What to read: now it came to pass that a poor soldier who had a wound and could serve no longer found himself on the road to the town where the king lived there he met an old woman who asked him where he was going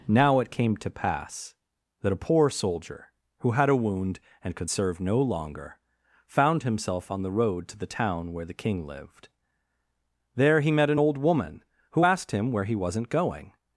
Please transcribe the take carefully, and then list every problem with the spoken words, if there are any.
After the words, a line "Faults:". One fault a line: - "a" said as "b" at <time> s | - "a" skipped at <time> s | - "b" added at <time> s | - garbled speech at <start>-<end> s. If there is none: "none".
now it came to pass that a poor soldier who had a wound and could serve no longer found himself on the road to the town where the king lived there he met an old woman who asked him where he wasn't going
Faults:
- "was" said as "wasn't" at 12.7 s